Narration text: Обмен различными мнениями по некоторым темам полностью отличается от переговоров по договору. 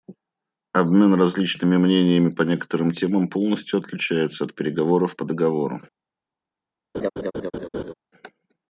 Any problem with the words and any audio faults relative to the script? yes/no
yes